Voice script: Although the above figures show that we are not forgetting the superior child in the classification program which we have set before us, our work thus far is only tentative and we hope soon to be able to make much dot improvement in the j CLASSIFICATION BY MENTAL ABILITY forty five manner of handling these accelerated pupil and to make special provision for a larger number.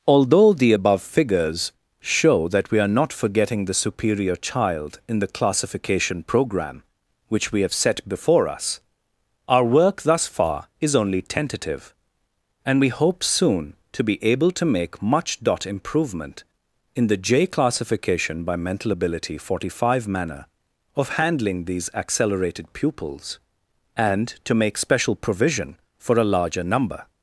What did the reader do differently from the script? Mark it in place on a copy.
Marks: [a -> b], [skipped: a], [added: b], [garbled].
Although the above figures show that we are not forgetting the superior child in the classification program which we have set before us, our work thus far is only tentative and we hope soon to be able to make much dot improvement in the j CLASSIFICATION BY MENTAL ABILITY forty five manner of handling these accelerated [pupil -> pupils] and to make special provision for a larger number.